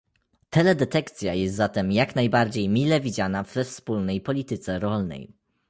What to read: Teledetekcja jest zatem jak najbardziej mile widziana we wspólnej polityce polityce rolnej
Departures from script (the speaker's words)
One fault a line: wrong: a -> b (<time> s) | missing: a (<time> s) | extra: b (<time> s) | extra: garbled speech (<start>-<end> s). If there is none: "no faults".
missing: polityce (4.8 s)